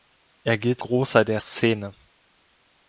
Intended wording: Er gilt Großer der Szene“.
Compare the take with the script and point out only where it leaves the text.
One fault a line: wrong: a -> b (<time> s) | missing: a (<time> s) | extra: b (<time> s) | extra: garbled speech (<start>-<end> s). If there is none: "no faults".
no faults